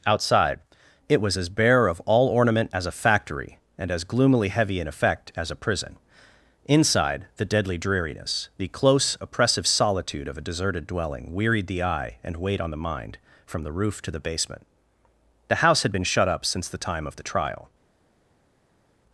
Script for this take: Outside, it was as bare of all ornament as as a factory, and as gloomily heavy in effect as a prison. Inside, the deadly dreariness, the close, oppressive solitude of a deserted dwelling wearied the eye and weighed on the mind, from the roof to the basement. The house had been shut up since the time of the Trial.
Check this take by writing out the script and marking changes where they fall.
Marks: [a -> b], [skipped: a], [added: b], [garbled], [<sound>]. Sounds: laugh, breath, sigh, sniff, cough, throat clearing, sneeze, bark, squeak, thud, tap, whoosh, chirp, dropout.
Outside, it was as bare of all ornament as [skipped: as] a factory, and as gloomily heavy in effect as a prison. Inside, the deadly dreariness, the close, oppressive solitude of a deserted dwelling wearied the eye and weighed on the mind, from the roof to the basement. The house had been shut up since the time of the Trial.